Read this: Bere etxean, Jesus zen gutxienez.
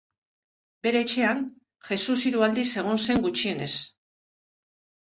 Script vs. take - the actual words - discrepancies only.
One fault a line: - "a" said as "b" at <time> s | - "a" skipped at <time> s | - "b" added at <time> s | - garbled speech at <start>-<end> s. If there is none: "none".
- "hiru aldiz egon" added at 2.3 s